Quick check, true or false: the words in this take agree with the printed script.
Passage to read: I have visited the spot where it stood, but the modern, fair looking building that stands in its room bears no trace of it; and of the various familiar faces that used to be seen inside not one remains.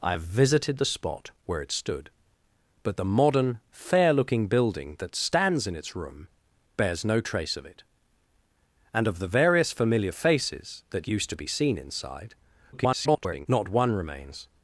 false